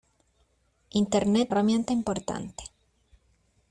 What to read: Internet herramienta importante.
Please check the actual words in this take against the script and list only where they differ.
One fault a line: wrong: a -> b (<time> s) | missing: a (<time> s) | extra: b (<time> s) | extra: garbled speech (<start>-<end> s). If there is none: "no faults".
no faults